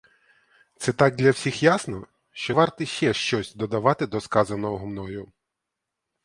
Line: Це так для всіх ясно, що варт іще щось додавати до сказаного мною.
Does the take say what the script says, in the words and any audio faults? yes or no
yes